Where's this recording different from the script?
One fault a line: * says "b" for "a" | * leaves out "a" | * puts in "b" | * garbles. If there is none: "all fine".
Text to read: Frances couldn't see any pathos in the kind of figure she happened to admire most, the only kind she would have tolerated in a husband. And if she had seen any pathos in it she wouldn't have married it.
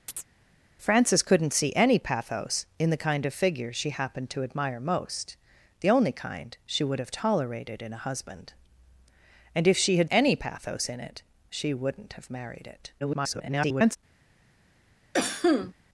* leaves out "seen"
* garbles